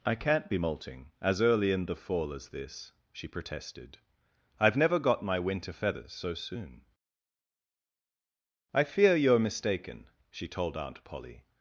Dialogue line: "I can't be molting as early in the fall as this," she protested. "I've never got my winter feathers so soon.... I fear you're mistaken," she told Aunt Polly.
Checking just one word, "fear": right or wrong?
right